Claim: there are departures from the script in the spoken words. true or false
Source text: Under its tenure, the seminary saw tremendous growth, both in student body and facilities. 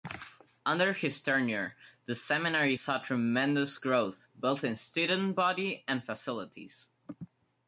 true